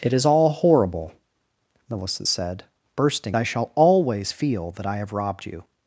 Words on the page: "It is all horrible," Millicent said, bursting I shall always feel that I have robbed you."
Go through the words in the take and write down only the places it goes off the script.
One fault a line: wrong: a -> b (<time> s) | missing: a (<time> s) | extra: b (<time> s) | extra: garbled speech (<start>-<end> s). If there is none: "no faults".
no faults